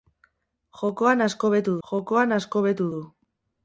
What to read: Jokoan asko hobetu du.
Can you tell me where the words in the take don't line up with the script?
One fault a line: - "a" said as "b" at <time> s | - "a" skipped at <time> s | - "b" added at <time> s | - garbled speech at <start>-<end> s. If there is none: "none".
- "jokoan asko hobetu" added at 1.9 s